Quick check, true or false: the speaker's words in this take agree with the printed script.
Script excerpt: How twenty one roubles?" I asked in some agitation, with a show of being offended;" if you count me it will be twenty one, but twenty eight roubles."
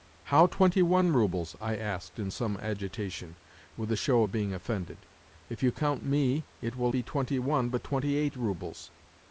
true